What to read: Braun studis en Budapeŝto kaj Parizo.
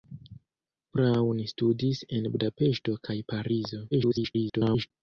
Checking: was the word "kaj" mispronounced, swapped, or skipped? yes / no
no